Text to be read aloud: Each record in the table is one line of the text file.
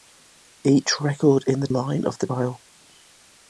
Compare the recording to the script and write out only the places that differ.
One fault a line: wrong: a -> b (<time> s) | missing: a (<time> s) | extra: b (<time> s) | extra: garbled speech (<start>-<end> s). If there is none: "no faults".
missing: table is one (1.7 s)
missing: text (2.3 s)